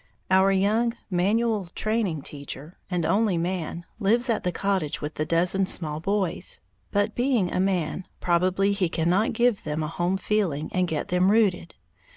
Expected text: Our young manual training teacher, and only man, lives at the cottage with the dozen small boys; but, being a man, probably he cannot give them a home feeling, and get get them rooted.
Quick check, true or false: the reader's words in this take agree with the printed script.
false